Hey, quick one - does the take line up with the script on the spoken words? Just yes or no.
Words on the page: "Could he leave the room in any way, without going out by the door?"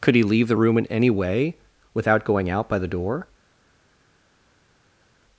yes